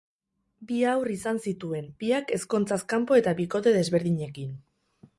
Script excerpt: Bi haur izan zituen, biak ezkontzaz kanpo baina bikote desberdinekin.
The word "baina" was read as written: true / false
false